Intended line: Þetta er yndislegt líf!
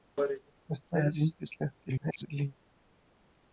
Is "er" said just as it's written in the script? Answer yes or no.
yes